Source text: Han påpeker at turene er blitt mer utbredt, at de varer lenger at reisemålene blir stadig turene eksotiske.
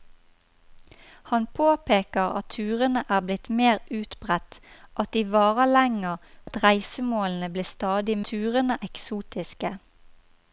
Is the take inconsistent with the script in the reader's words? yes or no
no